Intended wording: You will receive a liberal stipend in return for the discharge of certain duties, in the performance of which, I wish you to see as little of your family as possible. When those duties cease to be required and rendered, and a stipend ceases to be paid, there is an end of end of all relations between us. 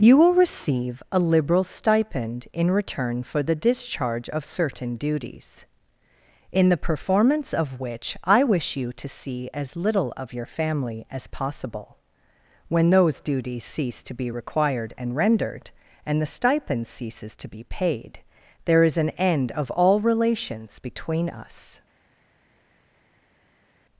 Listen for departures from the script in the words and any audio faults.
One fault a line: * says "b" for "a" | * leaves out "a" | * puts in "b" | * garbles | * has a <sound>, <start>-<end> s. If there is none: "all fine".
* says "the" for "a"
* leaves out "end of"